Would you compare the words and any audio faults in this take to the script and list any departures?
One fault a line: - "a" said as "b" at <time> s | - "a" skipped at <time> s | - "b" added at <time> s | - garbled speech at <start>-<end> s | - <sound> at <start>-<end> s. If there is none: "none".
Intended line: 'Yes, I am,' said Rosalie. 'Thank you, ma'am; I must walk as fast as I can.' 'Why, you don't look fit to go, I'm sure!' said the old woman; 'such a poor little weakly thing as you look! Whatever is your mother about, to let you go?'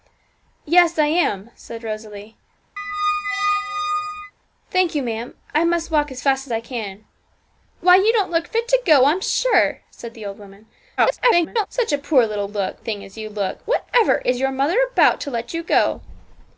- squeak at 2.8-4.3 s
- garbled speech at 11.0-11.7 s
- "weakly" said as "look" at 12.5 s